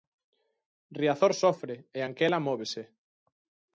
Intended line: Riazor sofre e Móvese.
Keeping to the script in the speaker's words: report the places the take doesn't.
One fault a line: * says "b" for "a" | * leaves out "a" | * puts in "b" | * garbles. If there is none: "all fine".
* puts in "Anquela"